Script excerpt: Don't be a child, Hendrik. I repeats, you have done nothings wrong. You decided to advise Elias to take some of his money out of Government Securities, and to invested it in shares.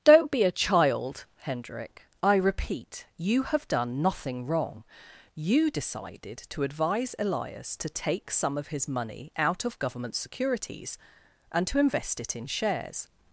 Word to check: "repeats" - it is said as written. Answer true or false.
false